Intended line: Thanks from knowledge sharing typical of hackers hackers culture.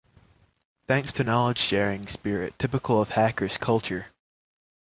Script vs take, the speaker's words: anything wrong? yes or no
yes